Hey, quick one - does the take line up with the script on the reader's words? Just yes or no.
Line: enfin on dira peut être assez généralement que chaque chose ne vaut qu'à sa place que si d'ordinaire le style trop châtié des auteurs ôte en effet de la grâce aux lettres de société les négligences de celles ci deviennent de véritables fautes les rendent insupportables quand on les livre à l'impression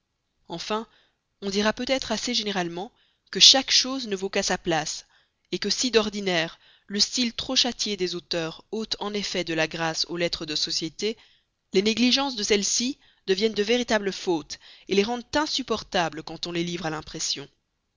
yes